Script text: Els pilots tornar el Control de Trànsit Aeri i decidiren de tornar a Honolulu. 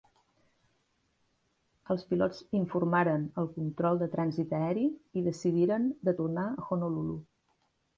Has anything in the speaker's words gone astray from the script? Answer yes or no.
yes